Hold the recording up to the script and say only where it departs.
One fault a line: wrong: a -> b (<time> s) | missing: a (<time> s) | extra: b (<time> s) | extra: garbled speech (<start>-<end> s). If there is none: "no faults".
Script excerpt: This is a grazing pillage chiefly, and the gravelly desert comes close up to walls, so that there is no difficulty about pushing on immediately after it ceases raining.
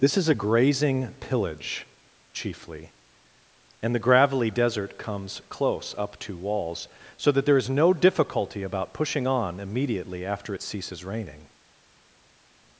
no faults